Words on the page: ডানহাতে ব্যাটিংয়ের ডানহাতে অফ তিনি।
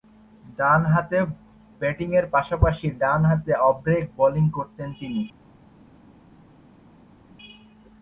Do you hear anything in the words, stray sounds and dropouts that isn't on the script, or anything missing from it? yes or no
yes